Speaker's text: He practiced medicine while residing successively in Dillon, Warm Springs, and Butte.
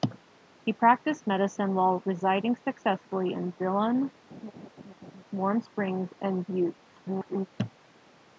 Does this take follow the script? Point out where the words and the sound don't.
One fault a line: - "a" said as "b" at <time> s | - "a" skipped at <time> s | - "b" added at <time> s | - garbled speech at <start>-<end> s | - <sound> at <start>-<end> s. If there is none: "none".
- laugh at 4.3-5.2 s
- garbled speech at 6.8-7.5 s